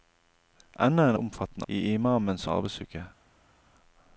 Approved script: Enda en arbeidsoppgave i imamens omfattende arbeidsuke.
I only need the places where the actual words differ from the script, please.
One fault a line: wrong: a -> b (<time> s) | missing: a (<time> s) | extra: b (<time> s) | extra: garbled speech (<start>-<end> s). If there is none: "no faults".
wrong: arbeidsoppgave -> omfattende (1.1 s)
missing: omfattende (2.5 s)